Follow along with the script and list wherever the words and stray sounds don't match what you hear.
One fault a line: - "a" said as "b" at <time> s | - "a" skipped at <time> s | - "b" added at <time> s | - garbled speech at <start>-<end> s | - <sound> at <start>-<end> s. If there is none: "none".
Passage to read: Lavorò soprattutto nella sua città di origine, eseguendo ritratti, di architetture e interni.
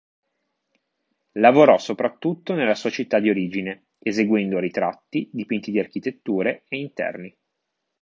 - "dipinti" added at 5.3 s